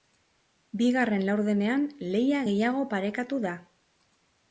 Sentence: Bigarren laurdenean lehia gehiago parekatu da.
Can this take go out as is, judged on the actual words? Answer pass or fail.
pass